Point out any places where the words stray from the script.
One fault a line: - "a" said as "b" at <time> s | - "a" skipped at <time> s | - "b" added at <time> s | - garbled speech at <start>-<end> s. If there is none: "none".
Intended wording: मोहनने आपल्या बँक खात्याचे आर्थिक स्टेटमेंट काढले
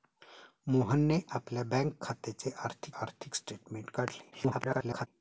- "आर्थिक" added at 3.0 s
- garbled speech at 4.3-5.1 s